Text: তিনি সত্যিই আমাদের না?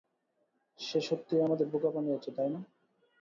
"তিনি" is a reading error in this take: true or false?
true